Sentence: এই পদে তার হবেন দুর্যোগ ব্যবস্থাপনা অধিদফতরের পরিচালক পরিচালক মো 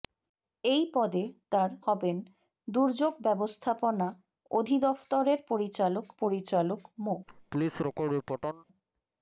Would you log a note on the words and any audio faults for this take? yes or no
yes